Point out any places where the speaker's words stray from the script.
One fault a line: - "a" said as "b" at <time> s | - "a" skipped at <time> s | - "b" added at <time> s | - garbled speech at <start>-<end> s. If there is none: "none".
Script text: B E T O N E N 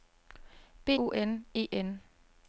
- "E T" skipped at 0.9 s